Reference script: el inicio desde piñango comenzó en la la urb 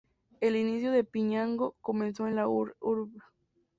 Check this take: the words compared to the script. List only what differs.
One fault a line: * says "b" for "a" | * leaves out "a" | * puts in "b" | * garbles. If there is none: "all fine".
* says "de" for "desde"
* leaves out "la"